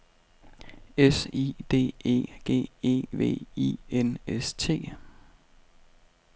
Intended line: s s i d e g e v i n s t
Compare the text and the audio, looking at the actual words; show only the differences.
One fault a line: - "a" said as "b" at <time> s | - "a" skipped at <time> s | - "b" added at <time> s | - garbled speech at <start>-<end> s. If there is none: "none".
- "s" skipped at 1.3 s